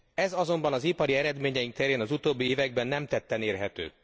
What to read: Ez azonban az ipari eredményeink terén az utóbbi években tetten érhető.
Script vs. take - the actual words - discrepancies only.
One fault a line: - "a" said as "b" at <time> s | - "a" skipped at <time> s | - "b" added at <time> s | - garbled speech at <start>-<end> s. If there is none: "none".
- "nem" added at 2.9 s